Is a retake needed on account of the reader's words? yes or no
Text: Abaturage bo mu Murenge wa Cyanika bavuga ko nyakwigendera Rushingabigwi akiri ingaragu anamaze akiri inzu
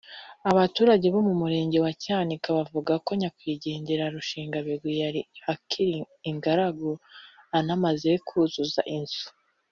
yes